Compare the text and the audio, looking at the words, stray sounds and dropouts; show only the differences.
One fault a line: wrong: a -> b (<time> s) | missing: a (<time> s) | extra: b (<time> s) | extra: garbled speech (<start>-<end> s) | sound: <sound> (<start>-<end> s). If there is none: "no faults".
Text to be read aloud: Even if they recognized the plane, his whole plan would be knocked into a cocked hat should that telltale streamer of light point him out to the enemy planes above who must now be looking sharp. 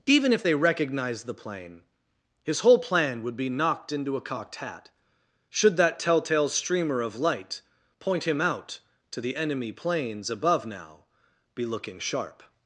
missing: who must (10.6 s)